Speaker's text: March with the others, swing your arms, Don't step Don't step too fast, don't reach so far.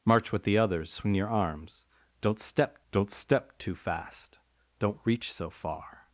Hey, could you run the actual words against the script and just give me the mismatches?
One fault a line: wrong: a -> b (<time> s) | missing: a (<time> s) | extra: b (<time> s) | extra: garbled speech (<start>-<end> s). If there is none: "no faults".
no faults